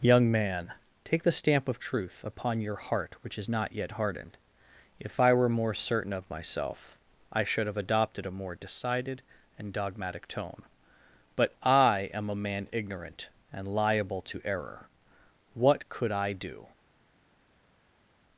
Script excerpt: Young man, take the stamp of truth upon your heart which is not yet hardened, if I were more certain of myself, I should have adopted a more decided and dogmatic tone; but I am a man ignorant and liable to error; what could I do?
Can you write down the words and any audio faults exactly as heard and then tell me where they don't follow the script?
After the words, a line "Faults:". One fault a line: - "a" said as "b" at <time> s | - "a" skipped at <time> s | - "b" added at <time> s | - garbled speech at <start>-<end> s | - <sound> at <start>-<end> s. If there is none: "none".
Young man, take the stamp of truth upon your heart which is not yet hardened, if I were more certain of myself, I should have adopted a more decided and dogmatic tone; but I am a man ignorant and liable to error; what could I do?
Faults:
none